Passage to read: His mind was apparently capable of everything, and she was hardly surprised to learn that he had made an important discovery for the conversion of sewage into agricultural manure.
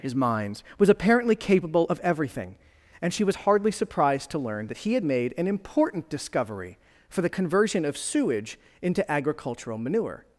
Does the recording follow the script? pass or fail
fail